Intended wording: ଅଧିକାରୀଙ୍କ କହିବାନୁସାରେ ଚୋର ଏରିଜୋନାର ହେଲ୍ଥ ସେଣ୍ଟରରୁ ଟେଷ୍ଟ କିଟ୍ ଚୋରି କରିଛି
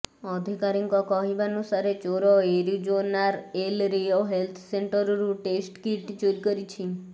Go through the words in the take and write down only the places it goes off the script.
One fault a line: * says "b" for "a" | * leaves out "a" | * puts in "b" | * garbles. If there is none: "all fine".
* puts in "ଏଲ୍ ରିଓ"